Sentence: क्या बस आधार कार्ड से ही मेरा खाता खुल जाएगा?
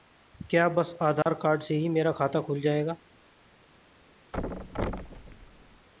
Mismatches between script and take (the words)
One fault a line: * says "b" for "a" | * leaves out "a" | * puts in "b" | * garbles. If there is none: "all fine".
all fine